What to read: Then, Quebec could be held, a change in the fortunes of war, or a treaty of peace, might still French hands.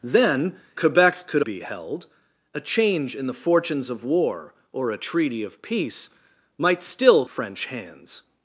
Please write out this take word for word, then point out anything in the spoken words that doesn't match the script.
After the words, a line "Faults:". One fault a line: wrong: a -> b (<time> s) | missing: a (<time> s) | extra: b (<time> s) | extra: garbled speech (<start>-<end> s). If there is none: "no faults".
Then, Quebec could be held, a change in the fortunes of war, or a treaty of peace, might still French hands.
Faults:
no faults